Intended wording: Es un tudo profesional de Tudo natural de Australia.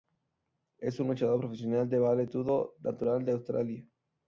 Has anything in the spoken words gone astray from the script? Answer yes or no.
yes